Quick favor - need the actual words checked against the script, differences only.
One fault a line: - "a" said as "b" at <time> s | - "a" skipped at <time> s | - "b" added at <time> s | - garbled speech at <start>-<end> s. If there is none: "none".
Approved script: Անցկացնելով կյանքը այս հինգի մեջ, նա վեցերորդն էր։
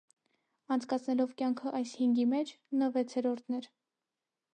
none